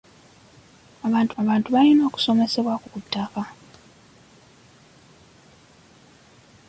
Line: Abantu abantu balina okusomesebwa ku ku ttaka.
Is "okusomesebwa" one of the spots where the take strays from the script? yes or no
no